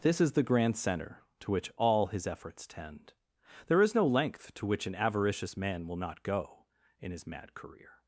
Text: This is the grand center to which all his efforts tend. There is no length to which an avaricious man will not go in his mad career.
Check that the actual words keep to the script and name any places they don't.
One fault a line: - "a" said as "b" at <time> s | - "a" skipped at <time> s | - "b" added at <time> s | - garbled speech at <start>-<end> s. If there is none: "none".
none